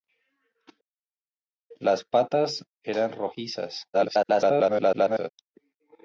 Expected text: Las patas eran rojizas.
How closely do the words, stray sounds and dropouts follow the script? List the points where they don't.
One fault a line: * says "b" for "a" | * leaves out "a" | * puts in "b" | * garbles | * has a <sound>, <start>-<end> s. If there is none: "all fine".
* garbles